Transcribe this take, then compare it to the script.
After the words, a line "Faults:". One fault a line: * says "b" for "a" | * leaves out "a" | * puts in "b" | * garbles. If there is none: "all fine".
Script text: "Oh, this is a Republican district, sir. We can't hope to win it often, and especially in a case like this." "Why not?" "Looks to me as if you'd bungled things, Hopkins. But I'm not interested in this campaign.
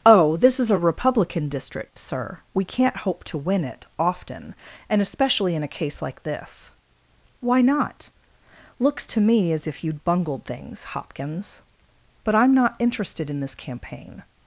"Oh, this is a Republican district, sir. We can't hope to win it often, and especially in a case like this." "Why not?" "Looks to me as if you'd bungled things, Hopkins. But I'm not interested in this campaign.
Faults:
all fine